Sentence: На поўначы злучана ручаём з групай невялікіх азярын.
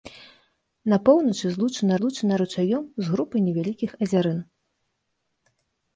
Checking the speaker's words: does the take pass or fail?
fail